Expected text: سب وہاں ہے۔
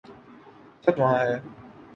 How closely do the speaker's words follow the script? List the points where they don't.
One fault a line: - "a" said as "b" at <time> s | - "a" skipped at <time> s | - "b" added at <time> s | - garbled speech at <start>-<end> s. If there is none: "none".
none